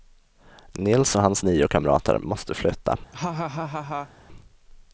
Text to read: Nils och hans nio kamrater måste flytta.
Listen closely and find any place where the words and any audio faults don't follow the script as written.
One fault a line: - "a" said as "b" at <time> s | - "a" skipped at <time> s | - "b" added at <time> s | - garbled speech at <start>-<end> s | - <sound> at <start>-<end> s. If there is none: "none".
- laugh at 3.1-4.1 s